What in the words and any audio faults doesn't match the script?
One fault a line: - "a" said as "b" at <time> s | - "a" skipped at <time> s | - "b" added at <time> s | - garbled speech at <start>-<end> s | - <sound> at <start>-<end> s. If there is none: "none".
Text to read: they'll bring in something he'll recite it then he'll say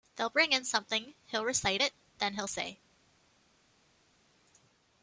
none